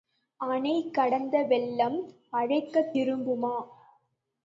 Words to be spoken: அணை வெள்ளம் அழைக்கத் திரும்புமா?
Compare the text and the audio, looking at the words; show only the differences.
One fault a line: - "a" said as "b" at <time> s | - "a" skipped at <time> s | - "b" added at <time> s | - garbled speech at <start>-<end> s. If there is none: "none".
- "கடந்த" added at 0.9 s